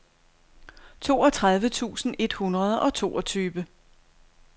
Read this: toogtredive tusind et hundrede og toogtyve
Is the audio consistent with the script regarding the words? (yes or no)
yes